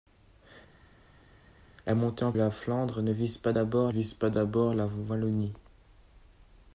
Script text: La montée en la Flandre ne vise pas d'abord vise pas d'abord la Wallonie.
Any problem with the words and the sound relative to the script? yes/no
no